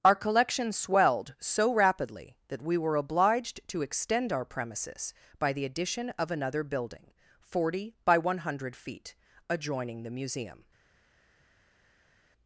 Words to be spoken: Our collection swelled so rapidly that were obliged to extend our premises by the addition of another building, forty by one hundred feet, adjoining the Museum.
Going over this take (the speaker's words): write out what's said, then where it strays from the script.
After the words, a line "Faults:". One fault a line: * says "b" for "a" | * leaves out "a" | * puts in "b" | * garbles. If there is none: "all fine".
Our collection swelled so rapidly that we were obliged to extend our premises by the addition of another building, forty by one hundred feet, adjoining the Museum.
Faults:
* puts in "we"